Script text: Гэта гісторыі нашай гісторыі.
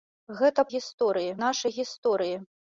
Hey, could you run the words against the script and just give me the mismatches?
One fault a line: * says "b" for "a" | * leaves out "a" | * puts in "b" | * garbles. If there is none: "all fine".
all fine